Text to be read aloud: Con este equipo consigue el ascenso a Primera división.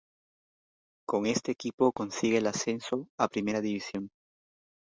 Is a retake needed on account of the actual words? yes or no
no